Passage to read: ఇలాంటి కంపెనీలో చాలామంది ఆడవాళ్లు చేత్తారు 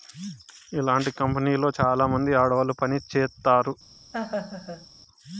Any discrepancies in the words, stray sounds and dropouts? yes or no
yes